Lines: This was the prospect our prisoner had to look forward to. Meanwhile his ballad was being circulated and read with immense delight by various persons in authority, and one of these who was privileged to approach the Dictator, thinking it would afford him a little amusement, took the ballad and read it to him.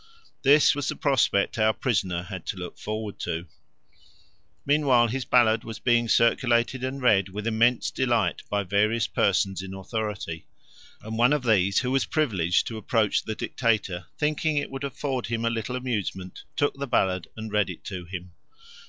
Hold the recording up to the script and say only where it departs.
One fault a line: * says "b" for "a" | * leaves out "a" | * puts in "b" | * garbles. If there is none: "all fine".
all fine